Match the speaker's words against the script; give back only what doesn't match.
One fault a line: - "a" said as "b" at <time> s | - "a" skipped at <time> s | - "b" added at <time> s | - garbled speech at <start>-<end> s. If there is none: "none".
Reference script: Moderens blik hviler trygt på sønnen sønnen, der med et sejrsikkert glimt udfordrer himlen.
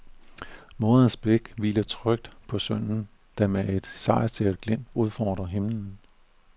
- "sønnen" skipped at 3.1 s